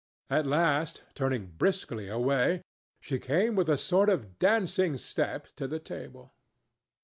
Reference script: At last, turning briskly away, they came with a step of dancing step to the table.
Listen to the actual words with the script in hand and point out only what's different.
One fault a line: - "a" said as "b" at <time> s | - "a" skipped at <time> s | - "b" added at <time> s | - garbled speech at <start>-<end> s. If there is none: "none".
- "they" said as "she" at 3.0 s
- "step" said as "sort" at 3.8 s